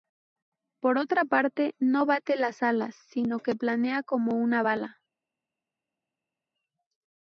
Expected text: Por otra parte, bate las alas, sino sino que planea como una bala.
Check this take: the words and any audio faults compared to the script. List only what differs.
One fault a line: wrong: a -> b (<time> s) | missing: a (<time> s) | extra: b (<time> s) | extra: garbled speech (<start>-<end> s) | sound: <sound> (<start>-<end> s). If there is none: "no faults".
extra: no (1.8 s)
missing: sino (3.4 s)